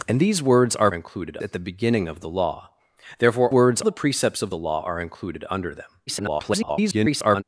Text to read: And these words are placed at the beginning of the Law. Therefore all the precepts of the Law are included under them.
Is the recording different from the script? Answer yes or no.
yes